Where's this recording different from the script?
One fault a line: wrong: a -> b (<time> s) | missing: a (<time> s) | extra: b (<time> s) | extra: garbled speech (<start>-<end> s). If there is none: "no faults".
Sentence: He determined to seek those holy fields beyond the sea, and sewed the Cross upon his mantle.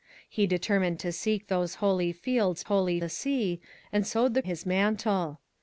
wrong: beyond -> holy (2.6 s)
missing: Cross upon (4.4 s)